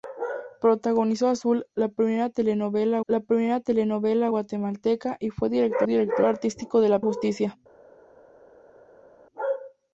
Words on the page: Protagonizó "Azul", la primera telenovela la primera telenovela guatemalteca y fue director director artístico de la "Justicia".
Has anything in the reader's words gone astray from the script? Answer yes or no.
no